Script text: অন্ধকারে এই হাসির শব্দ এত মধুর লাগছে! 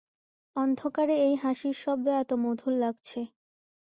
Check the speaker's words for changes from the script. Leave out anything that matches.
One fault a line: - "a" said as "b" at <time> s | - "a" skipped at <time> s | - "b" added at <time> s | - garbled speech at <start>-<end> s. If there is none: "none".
none